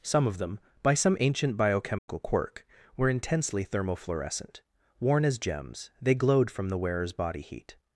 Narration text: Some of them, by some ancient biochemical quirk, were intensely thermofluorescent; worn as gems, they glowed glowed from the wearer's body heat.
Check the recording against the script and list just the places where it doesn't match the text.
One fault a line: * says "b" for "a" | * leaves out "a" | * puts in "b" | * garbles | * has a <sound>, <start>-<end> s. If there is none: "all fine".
* has a dropout, 2.0-2.1 s
* leaves out "glowed"